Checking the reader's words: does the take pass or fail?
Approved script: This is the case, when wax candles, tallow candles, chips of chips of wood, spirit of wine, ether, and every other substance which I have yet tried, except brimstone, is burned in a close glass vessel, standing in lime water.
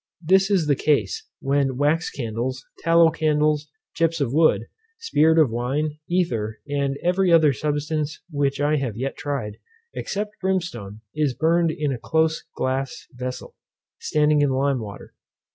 fail